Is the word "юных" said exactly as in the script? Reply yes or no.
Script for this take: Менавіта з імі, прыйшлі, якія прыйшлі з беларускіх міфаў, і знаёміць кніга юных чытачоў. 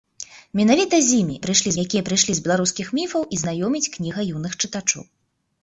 yes